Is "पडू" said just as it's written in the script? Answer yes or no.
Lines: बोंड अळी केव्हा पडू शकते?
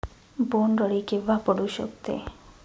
yes